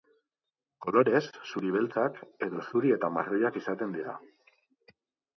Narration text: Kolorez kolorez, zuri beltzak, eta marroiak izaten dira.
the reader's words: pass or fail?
fail